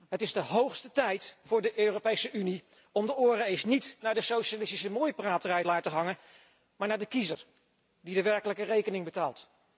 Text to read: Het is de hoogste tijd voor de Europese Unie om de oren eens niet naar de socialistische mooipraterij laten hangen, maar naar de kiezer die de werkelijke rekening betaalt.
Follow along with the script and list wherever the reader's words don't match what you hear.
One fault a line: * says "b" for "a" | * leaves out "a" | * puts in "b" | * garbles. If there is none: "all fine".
all fine